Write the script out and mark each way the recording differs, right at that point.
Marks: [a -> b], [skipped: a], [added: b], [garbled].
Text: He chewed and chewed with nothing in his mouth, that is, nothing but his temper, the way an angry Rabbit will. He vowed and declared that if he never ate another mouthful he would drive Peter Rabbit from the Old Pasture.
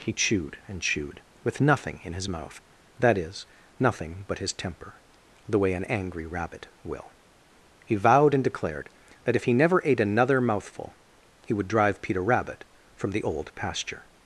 He chewed and chewed with nothing in his mouth, that is, nothing but his temper, the way an angry Rabbit will. He vowed and declared that if he never ate another mouthful he would drive Peter Rabbit from the Old Pasture.